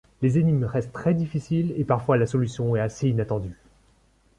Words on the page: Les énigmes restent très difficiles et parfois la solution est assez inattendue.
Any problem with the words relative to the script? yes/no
no